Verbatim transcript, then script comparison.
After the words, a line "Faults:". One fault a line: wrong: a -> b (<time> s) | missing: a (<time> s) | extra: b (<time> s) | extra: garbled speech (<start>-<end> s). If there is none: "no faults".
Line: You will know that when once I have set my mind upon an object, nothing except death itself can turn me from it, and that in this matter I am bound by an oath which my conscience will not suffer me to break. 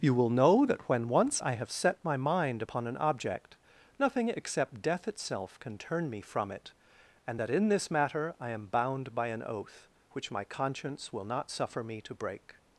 You will know that when once I have set my mind upon an object, nothing except death itself can turn me from it, and that in this matter I am bound by an oath which my conscience will not suffer me to break.
Faults:
no faults